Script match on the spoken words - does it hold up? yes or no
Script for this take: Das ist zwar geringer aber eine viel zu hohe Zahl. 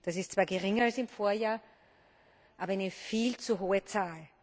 no